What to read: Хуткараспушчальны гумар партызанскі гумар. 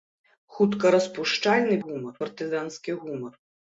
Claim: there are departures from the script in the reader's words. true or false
false